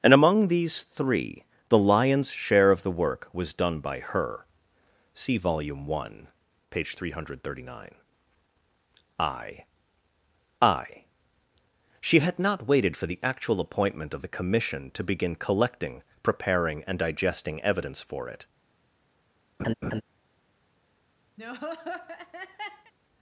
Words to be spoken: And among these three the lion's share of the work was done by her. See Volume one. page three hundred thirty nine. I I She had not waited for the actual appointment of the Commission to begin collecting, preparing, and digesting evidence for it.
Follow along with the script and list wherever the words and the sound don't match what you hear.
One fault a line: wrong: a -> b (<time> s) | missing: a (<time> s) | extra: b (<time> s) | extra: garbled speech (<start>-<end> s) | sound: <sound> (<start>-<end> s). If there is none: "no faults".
sound: laugh (19.6-20.0 s)
sound: laugh (21.4-22.9 s)